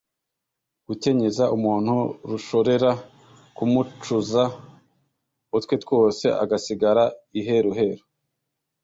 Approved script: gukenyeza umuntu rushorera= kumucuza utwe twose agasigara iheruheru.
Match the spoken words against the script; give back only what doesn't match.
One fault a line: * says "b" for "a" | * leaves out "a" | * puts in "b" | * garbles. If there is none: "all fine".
all fine